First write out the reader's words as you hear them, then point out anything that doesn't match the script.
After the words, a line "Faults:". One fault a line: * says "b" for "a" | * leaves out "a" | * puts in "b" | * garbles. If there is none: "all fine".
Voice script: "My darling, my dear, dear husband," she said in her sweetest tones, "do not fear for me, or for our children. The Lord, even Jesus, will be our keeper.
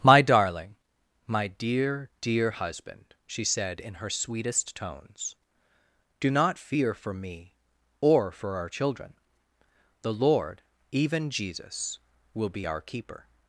"My darling, my dear, dear husband," she said in her sweetest tones, "do not fear for me, or for our children. The Lord, even Jesus, will be our keeper.
Faults:
all fine